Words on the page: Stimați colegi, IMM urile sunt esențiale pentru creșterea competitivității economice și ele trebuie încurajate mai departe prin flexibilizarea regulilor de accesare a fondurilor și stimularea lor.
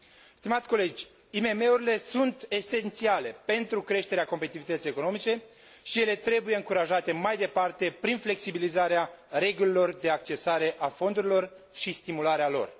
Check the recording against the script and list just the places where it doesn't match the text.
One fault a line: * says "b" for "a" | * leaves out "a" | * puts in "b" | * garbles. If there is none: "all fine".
all fine